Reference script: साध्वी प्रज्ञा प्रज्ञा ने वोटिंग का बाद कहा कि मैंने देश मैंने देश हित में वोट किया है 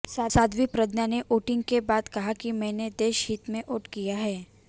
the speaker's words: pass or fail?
fail